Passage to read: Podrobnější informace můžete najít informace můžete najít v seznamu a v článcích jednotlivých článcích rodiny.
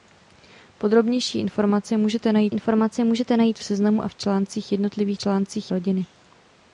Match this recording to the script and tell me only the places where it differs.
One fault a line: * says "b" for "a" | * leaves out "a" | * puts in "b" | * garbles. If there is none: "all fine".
all fine